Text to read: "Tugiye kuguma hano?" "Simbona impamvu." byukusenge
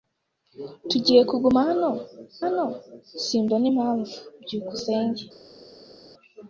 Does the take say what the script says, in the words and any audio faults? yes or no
no